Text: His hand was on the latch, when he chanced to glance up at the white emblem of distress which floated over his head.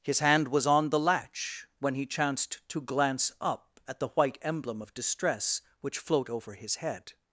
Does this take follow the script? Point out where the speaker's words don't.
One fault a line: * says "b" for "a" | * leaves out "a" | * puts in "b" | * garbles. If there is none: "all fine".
* says "float" for "floated"